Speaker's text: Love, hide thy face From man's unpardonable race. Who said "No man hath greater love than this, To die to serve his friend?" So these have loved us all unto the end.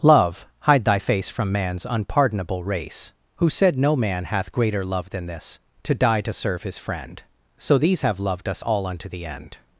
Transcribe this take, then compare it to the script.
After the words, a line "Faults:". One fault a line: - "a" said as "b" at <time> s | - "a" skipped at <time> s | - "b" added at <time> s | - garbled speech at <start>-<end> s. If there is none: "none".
Love, hide thy face From man's unpardonable race. Who said "No man hath greater love than this, To die to serve his friend?" So these have loved us all unto the end.
Faults:
none